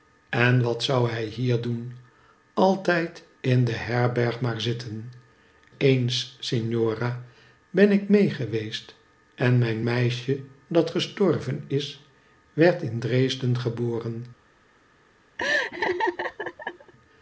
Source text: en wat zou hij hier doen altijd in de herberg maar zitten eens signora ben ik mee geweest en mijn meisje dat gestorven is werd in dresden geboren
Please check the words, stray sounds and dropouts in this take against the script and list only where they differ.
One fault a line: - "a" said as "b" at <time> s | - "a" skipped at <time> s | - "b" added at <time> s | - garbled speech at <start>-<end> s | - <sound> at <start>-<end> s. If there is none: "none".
- laugh at 15.4-16.9 s